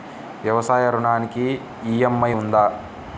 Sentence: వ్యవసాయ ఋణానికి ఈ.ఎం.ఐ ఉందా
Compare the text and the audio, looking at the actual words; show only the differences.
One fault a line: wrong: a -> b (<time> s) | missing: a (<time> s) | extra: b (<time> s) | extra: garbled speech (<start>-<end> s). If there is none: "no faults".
no faults